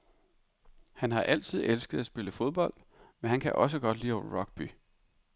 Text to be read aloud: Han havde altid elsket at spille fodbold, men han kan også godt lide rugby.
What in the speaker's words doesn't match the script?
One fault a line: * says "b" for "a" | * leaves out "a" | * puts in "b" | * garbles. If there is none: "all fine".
* says "har" for "havde"